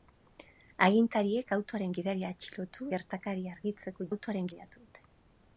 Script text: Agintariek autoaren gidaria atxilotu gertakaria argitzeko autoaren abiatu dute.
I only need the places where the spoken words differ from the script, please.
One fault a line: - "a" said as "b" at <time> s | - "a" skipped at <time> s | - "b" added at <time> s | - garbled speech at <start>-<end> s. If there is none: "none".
none